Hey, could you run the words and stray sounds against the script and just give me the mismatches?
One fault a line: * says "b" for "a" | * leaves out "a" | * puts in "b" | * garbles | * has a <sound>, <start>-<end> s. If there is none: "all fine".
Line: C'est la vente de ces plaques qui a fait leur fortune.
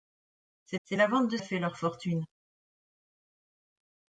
* puts in "c'est"
* leaves out "ces plaques qui"